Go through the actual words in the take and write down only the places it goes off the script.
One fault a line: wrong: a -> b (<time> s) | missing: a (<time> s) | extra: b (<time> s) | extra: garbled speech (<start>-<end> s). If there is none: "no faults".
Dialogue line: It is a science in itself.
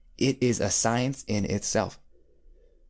no faults